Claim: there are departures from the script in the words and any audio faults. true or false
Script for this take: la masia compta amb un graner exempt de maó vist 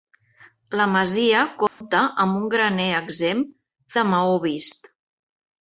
true